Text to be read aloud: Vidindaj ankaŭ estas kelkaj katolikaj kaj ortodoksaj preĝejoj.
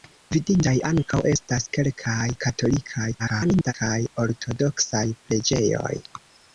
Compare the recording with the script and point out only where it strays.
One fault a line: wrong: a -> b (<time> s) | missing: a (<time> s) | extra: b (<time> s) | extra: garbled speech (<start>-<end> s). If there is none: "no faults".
extra: garbled speech (3.2-3.7 s)